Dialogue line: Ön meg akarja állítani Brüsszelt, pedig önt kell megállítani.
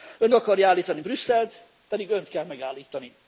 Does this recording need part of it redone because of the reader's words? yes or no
yes